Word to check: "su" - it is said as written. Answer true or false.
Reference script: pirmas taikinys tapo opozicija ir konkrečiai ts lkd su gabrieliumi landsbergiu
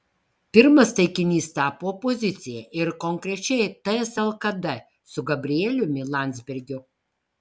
true